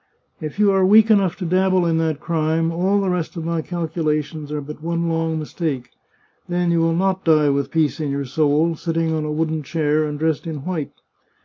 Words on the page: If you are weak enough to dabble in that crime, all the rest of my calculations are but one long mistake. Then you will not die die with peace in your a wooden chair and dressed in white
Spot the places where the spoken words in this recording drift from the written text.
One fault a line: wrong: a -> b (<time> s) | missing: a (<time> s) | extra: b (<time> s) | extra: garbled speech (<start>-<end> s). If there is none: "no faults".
missing: die (7.5 s)
extra: soul sitting on (8.2 s)